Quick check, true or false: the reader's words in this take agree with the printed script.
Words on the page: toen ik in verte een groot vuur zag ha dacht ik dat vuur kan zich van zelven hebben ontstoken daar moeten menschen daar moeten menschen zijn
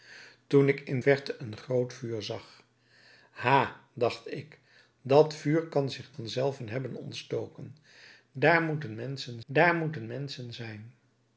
true